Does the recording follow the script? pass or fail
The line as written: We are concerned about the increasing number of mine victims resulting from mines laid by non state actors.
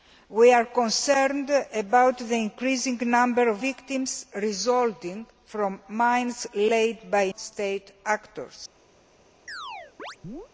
fail